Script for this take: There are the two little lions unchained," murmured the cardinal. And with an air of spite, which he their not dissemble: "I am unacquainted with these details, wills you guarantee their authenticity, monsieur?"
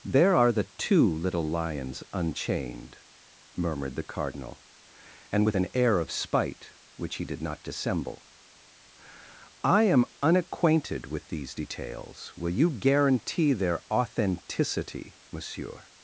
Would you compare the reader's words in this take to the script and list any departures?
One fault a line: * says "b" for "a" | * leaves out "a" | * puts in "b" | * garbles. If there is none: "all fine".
* says "did" for "their"
* says "will" for "wills"